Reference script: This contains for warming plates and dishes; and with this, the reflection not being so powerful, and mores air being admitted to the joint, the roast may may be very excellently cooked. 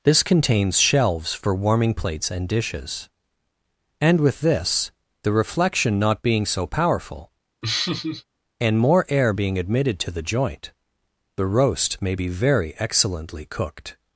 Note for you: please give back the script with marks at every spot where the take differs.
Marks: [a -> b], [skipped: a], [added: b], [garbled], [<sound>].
This contains [added: shelves] for warming plates and dishes; and with this, the reflection not being so powerful, [laugh] and [mores -> more] air being admitted to the joint, the roast may [skipped: may] be very excellently cooked.